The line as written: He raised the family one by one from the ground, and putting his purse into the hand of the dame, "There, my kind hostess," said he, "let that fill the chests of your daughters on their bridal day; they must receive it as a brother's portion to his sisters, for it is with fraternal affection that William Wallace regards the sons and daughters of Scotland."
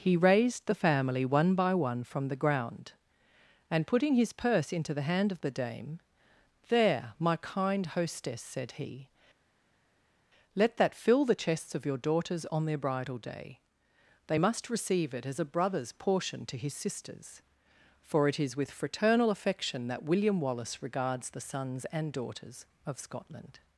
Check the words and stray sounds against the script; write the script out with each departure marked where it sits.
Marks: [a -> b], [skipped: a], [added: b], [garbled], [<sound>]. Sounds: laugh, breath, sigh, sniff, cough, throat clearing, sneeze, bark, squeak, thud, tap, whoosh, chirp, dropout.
He raised the family one by one from the ground, and putting his purse into the hand of the dame, "There, my kind hostess," said he, "let that fill the chests of your daughters on their bridal day; they must receive it as a brother's portion to his sisters, for it is with fraternal affection that William Wallace regards the sons and daughters of Scotland."